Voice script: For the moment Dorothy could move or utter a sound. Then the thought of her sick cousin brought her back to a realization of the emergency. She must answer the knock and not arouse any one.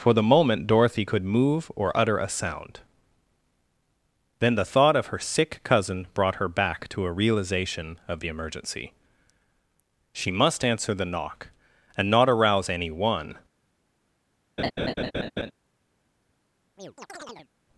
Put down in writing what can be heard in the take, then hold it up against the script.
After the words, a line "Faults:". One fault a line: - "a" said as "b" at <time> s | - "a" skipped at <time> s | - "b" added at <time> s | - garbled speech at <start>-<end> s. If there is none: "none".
For the moment Dorothy could move or utter a sound. Then the thought of her sick cousin brought her back to a realization of the emergency. She must answer the knock and not arouse any one.
Faults:
none